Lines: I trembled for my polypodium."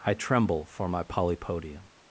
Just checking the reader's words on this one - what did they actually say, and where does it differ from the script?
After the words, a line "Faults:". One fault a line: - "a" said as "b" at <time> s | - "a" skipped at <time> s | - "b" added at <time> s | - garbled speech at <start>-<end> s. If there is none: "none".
I tremble for my polypodium."
Faults:
- "trembled" said as "tremble" at 0.1 s